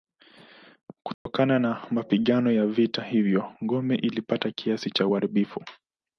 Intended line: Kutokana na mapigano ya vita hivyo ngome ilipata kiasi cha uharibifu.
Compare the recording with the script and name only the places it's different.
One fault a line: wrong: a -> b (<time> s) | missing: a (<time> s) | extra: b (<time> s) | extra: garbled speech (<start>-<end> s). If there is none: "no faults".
no faults